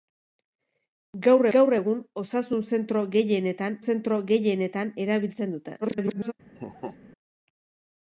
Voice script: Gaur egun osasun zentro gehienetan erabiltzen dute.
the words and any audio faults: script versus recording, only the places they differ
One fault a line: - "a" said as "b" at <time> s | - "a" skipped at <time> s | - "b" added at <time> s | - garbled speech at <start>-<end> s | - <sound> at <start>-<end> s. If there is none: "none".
- "gaur" added at 1.5 s
- "zentro gehienetan" added at 3.9 s
- garbled speech at 5.8-6.3 s
- laugh at 6.5-7.0 s